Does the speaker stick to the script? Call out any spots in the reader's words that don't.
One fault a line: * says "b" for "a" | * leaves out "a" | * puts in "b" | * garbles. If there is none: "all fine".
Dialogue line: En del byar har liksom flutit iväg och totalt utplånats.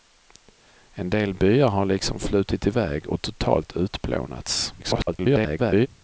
* garbles